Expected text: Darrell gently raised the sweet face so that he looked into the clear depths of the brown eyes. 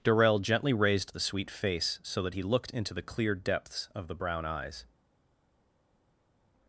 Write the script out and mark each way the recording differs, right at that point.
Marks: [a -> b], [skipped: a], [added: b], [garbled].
Darrell gently raised the sweet face so that he looked into the clear depths of the brown eyes.